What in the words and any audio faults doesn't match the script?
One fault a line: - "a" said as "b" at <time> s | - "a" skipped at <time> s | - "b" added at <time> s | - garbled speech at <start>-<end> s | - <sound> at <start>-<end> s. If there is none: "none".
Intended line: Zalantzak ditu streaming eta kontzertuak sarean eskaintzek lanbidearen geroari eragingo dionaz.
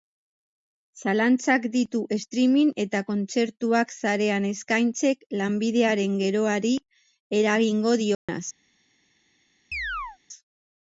- dropout at 8.1-8.3 s
- chirp at 9.7-10.2 s